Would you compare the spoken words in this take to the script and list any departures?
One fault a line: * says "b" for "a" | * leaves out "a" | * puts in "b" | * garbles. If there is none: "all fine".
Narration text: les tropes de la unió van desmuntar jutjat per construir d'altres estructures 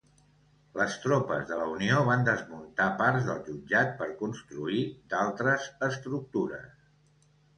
* puts in "parts del"